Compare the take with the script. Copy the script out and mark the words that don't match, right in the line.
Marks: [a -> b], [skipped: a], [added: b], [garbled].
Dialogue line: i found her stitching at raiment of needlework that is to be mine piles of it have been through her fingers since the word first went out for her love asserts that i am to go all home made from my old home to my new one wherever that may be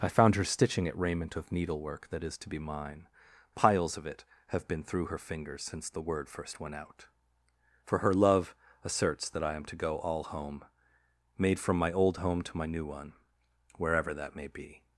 i found her stitching at raiment of needlework that is to be mine piles of it have been through her fingers since the word first went out for her love asserts that i am to go all home made from my old home to my new one wherever that may be